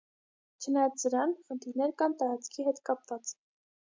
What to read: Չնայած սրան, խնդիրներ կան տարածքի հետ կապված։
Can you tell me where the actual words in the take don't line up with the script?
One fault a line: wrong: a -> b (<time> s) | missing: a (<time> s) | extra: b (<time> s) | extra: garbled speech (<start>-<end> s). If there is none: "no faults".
no faults